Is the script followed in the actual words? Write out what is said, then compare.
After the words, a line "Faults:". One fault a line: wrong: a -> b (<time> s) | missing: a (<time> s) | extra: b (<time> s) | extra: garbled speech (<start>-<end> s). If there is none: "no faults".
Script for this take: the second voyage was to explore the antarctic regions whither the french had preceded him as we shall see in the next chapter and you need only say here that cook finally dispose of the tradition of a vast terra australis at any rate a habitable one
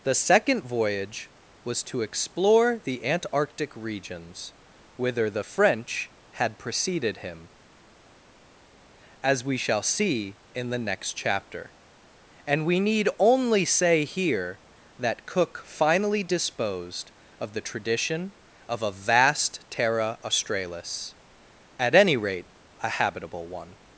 the second voyage was to explore the antarctic regions whither the french had preceded him as we shall see in the next chapter and we need only say here that cook finally disposed of the tradition of a vast terra australis at any rate a habitable one
Faults:
wrong: you -> we (12.7 s)
wrong: dispose -> disposed (16.2 s)